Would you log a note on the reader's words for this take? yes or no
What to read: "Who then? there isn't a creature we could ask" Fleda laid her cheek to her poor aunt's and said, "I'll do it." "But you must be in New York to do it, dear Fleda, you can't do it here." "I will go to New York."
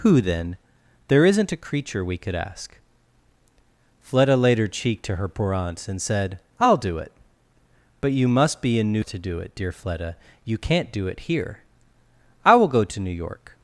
yes